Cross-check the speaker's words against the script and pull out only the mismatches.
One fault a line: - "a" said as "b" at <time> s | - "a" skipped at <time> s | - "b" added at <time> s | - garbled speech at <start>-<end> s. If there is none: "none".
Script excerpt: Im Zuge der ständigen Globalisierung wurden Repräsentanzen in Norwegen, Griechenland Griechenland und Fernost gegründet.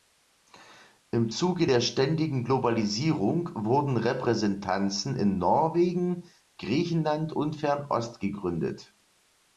- "Griechenland" skipped at 7.3 s